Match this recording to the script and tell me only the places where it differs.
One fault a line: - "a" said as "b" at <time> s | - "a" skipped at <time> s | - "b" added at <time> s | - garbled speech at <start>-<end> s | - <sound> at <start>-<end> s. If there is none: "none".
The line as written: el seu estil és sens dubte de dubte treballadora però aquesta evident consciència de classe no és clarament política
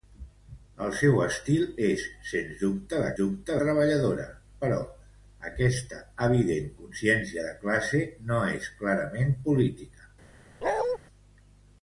- bark at 10.6-11.0 s